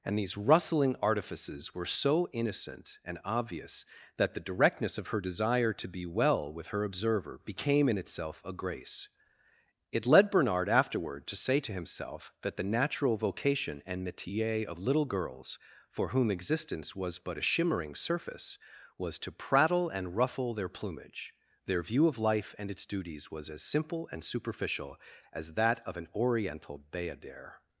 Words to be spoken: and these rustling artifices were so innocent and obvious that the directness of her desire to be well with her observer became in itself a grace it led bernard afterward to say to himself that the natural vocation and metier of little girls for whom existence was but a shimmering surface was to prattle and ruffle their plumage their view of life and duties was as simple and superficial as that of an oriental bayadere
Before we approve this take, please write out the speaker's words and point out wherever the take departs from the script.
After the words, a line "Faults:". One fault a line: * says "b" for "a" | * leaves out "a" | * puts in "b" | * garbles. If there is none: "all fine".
and these rustling artifices were so innocent and obvious that the directness of her desire to be well with her observer became in itself a grace it led bernard afterward to say to himself that the natural vocation and metier of little girls for whom existence was but a shimmering surface was to prattle and ruffle their plumage their view of life and its duties was as simple and superficial as that of an oriental bayadere
Faults:
* puts in "its"